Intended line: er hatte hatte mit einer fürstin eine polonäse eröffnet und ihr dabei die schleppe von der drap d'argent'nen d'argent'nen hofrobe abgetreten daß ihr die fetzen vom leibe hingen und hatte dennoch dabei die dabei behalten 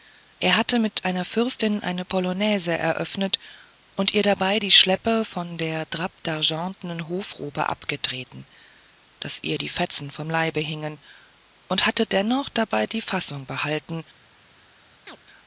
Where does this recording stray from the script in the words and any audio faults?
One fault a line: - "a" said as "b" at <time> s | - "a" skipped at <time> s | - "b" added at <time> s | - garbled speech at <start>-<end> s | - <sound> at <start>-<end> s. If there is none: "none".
- "hatte" skipped at 0.8 s
- "d'argent'nen" skipped at 7.1 s
- "dabei" said as "fassung" at 13.0 s
- chirp at 15.1-15.2 s